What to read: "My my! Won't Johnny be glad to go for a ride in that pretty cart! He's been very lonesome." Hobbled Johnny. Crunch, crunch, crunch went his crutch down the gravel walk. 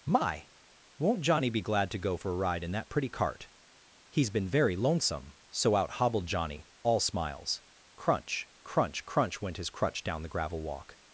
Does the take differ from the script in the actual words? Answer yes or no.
yes